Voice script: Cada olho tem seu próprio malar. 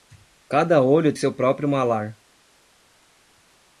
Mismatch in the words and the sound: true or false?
true